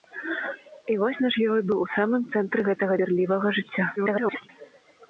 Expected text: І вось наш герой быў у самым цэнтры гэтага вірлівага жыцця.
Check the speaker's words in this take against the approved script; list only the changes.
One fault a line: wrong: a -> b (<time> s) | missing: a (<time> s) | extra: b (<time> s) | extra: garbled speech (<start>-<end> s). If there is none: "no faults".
extra: garbled speech (4.0-4.5 s)